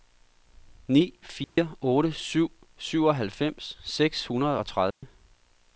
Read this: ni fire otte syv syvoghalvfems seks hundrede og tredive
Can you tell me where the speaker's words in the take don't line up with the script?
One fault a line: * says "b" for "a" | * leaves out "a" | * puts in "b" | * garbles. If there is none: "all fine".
all fine